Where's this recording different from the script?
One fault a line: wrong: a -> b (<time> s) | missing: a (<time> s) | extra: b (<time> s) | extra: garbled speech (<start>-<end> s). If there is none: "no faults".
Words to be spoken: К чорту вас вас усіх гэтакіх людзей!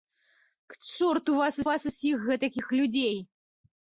no faults